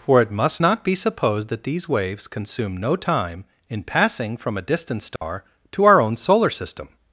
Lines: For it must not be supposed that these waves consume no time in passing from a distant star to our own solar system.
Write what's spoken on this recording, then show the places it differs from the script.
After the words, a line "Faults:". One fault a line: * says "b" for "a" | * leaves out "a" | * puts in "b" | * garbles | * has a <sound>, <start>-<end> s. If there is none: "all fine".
For it must not be supposed that these waves consume no time in passing from a distant star to our own solar system.
Faults:
* has a dropout, 5.2-5.2 s